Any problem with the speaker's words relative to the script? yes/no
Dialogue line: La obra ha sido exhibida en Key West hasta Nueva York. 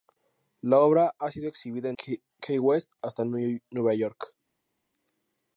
no